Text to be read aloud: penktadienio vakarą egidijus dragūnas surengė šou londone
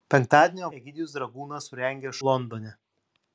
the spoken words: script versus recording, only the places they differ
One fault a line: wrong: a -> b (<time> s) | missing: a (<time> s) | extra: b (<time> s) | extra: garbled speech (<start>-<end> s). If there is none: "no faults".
missing: vakarą (0.7 s)
missing: šou (2.1 s)